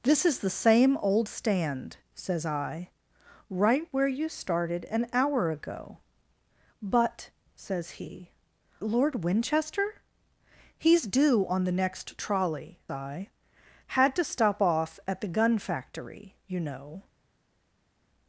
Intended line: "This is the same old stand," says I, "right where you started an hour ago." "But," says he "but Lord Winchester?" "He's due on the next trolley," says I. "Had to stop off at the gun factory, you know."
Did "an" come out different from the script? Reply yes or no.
no